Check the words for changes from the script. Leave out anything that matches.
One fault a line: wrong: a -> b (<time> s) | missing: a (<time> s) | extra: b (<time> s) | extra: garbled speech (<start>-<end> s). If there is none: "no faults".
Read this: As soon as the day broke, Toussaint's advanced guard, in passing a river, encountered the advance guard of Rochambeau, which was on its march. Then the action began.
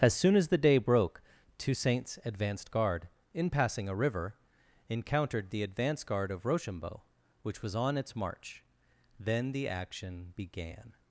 no faults